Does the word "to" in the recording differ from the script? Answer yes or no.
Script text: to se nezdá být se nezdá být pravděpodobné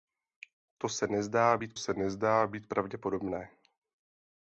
no